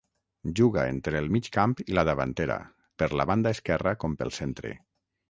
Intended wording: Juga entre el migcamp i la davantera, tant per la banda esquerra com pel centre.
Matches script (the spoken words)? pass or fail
fail